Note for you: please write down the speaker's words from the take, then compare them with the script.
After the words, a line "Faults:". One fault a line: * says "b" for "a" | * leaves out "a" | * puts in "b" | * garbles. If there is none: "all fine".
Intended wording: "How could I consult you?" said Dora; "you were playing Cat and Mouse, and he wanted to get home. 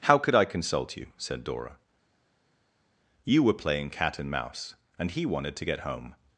"How could I consult you?" said Dora; "you were playing Cat and Mouse, and he wanted to get home.
Faults:
all fine